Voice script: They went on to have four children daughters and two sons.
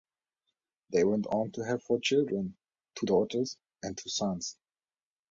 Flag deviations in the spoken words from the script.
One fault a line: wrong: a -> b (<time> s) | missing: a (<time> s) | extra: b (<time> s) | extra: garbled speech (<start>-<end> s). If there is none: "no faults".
extra: two (3.0 s)